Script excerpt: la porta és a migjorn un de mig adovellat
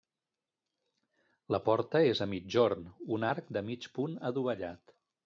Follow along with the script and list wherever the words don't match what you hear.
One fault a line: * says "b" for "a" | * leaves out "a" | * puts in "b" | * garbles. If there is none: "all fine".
* puts in "arc"
* puts in "punt"